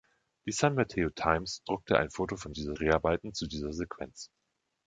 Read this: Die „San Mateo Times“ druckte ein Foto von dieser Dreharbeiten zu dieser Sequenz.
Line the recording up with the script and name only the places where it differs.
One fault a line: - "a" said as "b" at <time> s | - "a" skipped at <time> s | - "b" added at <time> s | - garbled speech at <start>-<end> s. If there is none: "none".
none